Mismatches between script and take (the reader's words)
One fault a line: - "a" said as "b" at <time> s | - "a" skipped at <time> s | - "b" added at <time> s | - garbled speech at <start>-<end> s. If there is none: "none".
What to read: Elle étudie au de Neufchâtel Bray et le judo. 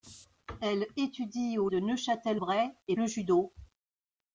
none